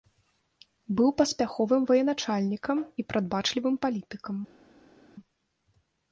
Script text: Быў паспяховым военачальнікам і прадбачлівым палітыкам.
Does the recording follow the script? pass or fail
pass